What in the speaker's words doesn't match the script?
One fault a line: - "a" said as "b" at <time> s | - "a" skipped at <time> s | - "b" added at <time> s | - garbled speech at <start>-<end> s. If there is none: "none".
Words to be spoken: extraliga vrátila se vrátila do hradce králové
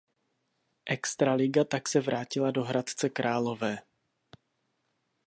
- "vrátila" said as "tak" at 1.6 s